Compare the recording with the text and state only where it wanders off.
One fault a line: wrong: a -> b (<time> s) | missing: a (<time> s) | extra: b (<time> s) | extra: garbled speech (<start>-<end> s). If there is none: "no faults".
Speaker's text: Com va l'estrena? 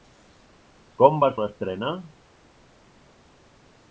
no faults